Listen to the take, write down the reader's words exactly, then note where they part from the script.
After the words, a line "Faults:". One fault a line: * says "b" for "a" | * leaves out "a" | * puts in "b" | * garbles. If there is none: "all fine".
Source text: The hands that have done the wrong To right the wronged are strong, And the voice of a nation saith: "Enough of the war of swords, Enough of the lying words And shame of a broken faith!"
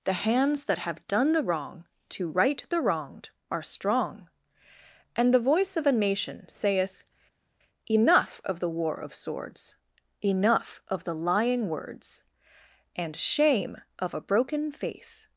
The hands that have done the wrong To right the wronged are strong, And the voice of a nation saith: "Enough of the war of swords, Enough of the lying words And shame of a broken faith!"
Faults:
all fine